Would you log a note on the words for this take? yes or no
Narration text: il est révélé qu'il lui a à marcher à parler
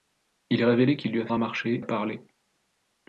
no